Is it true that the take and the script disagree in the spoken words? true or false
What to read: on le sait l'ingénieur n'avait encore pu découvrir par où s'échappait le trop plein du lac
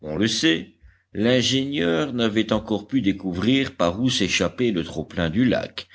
false